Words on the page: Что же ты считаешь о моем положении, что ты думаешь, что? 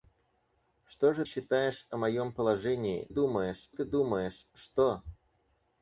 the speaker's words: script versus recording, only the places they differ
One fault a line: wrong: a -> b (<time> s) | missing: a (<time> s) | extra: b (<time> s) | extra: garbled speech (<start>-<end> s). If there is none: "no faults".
missing: ты (1.2 s)
wrong: что -> думаешь (3.1 s)